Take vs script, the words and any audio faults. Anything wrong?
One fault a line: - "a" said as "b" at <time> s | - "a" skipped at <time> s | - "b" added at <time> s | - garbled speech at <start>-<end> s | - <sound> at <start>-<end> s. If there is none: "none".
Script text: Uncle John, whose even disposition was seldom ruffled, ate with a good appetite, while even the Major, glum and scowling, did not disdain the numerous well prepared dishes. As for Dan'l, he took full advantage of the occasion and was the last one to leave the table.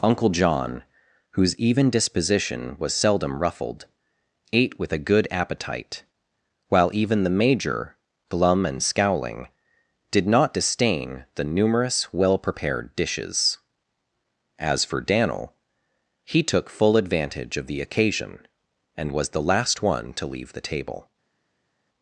none